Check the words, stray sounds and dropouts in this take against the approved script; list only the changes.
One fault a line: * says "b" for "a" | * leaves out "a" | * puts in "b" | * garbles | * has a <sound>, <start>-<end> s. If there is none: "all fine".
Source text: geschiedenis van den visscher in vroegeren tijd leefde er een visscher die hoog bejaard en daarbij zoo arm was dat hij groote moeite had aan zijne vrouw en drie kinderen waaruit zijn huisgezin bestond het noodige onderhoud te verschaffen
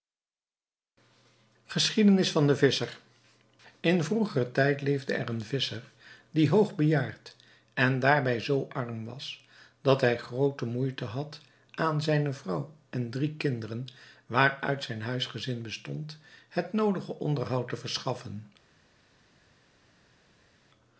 all fine